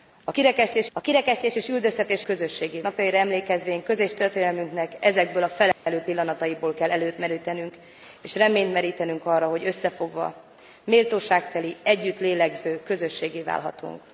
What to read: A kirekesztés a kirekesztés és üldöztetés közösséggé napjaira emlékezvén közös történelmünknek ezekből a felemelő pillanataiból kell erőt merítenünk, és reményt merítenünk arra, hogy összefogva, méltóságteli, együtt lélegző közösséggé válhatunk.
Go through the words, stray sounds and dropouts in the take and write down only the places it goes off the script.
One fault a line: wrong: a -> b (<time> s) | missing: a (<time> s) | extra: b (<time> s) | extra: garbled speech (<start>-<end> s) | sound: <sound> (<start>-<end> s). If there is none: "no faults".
sound: dropout (5.7-5.9 s)